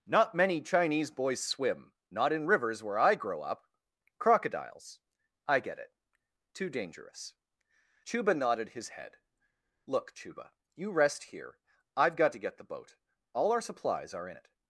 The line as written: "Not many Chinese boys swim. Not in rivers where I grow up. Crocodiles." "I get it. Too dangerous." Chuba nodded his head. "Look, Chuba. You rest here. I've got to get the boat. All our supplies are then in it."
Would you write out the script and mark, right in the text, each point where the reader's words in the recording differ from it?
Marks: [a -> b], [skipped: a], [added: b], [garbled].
"Not many Chinese boys swim. Not in rivers where I grow up. Crocodiles." "I get it. Too dangerous." Chuba nodded his head. "Look, Chuba. You rest here. I've got to get the boat. All our supplies are [skipped: then] in it."